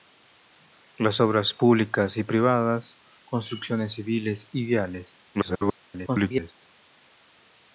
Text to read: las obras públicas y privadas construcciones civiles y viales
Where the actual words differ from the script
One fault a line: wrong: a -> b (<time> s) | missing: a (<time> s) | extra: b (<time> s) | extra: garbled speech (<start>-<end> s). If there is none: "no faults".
extra: garbled speech (5.3-6.5 s)